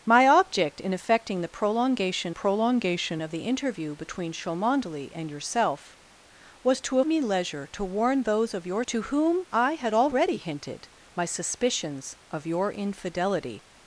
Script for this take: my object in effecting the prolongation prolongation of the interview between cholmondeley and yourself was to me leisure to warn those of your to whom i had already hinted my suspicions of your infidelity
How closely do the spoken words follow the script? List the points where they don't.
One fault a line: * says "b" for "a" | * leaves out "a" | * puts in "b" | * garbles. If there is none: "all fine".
all fine